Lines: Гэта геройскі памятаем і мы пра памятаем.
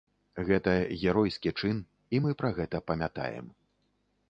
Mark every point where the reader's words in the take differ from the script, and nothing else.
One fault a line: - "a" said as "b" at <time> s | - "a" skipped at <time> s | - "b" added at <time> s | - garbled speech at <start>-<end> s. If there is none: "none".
- "памятаем" said as "чын" at 1.6 s
- "гэта" added at 2.6 s